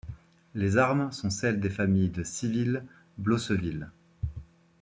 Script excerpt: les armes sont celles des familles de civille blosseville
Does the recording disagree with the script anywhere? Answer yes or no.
no